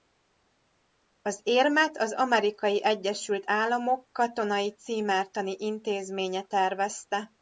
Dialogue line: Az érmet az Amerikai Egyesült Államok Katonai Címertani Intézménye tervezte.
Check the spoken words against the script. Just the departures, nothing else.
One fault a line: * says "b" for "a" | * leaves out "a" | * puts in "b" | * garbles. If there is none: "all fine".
all fine